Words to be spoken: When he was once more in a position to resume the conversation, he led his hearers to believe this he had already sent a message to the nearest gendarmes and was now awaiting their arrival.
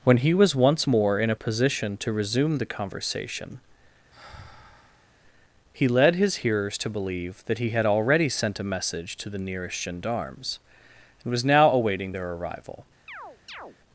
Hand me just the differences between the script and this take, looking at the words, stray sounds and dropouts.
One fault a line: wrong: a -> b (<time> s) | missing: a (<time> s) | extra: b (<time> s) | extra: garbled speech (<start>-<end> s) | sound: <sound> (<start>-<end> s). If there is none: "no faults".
sound: sigh (4.1-5.1 s)
wrong: this -> that (7.5 s)
sound: chirp (13.1-13.8 s)